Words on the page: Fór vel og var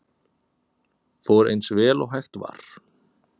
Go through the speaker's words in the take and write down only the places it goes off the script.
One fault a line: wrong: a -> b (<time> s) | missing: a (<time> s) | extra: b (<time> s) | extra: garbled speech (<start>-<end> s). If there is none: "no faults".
extra: eins (1.5 s)
extra: hægt (2.2 s)